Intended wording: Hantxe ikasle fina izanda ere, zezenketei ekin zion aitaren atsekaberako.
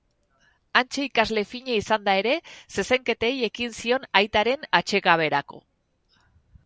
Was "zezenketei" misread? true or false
false